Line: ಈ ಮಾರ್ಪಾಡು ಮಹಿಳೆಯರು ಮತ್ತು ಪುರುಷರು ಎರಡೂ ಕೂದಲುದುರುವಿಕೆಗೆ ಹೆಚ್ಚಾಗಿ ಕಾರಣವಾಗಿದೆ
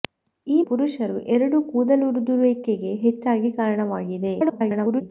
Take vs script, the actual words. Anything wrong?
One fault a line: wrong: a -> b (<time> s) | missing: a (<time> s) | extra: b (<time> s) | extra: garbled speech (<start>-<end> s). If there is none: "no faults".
missing: ಮಾರ್ಪಾಡು ಮಹಿಳೆಯರು ಮತ್ತು (0.6 s)
extra: garbled speech (4.4-5.0 s)